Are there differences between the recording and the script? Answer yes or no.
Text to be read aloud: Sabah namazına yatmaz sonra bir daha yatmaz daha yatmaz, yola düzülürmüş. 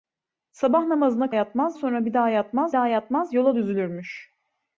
no